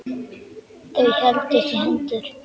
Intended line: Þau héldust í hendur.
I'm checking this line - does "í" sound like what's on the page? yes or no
yes